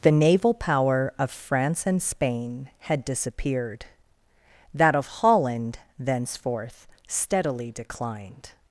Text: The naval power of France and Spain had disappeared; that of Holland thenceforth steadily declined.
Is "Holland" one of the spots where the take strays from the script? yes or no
no